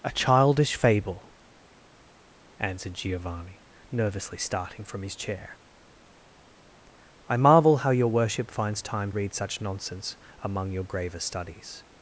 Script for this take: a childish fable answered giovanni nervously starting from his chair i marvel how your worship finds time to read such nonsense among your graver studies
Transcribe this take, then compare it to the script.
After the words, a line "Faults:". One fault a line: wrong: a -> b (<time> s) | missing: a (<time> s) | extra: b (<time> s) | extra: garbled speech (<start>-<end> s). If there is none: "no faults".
a childish fable answered giovanni nervously starting from his chair i marvel how your worship finds time read such nonsense among your graver studies
Faults:
missing: to (9.1 s)